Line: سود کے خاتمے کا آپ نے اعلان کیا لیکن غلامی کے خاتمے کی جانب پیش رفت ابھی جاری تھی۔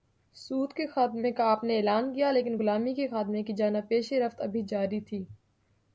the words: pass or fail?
pass